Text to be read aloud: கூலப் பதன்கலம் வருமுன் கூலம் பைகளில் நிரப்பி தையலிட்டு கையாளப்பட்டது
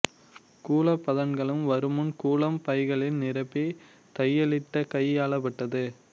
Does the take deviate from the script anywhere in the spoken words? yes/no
no